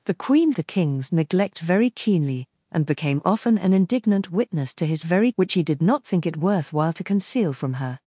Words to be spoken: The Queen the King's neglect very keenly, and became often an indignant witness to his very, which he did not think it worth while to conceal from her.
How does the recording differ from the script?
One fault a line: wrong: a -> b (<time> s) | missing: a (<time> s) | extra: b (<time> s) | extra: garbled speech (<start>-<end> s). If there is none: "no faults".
no faults